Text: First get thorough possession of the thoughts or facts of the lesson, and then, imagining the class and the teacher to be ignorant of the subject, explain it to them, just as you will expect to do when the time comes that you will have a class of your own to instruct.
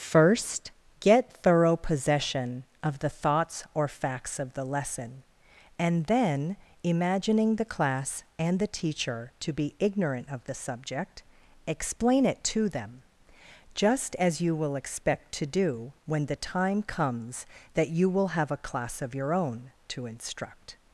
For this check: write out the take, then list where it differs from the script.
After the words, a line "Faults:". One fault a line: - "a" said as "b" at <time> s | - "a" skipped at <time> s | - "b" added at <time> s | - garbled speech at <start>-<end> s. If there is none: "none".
First get thorough possession of the thoughts or facts of the lesson, and then, imagining the class and the teacher to be ignorant of the subject, explain it to them, just as you will expect to do when the time comes that you will have a class of your own to instruct.
Faults:
none